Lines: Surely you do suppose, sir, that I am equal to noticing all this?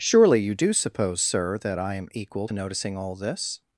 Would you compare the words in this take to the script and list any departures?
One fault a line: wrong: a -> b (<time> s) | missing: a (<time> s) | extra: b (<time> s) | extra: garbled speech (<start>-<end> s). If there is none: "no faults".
no faults